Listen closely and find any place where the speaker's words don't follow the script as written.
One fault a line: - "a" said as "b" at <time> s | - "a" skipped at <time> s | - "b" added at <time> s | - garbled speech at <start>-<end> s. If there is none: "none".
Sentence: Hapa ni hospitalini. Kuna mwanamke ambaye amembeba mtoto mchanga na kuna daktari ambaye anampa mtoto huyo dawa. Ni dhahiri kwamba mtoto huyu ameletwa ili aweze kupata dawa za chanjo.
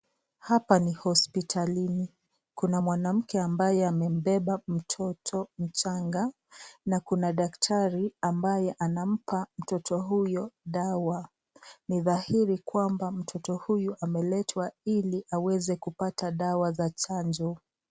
none